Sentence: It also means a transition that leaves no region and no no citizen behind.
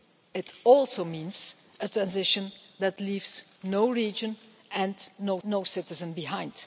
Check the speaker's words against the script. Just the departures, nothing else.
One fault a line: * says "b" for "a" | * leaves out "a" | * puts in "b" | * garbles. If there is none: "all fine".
all fine